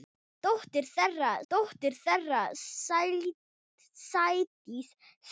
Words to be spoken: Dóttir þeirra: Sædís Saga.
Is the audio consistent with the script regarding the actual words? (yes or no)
no